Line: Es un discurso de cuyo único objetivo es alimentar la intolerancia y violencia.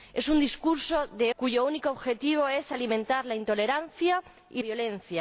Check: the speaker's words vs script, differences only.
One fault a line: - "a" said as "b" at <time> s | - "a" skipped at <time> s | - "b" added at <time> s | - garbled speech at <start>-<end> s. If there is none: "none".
none